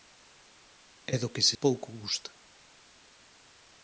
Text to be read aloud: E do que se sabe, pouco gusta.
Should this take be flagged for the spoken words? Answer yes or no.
yes